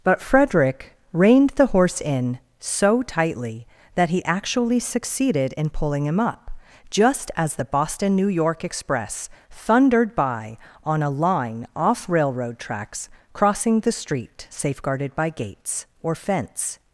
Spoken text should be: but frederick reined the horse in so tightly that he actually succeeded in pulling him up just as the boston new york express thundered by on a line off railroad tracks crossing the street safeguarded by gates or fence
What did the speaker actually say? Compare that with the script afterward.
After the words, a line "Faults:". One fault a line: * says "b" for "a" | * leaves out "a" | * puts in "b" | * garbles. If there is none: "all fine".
but frederick reined the horse in so tightly that he actually succeeded in pulling him up just as the boston new york express thundered by on a line off railroad tracks crossing the street safeguarded by gates or fence
Faults:
all fine